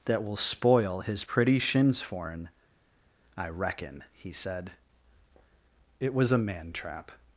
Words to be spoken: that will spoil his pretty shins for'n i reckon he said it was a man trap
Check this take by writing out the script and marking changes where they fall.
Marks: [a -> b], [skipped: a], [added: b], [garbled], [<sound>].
that will spoil his pretty shins for'n i reckon he said it was a man trap